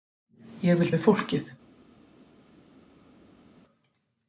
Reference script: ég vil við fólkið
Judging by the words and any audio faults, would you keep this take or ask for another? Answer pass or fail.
pass